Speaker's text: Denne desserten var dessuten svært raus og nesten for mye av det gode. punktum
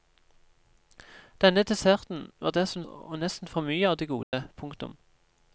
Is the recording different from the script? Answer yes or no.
yes